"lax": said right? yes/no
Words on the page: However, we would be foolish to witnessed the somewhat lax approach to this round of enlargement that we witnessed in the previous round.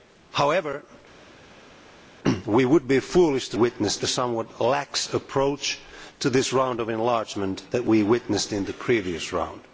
yes